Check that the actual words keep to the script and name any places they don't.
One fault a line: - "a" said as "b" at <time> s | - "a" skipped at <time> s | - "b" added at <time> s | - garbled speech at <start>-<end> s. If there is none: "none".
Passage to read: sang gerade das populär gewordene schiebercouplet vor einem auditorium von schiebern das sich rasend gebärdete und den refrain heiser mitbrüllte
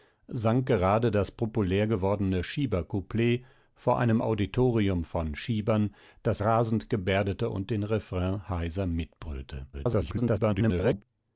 - "sich" skipped at 6.4 s
- garbled speech at 9.7-11.0 s